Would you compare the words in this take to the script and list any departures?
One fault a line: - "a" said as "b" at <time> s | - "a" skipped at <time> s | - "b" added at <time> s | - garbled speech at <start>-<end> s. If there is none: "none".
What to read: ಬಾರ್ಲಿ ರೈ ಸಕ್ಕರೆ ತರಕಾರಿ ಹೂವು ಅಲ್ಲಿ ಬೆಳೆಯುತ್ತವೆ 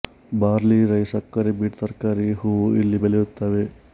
- "ಬೀಟ್" added at 1.6 s
- "ಅಲ್ಲಿ" said as "ಇಲ್ಲಿ" at 2.8 s